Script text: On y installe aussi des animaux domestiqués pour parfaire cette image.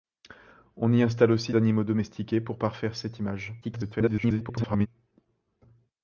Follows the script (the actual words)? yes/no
no